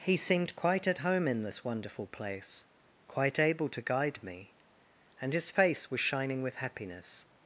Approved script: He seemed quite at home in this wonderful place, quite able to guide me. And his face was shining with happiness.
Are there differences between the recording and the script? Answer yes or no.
no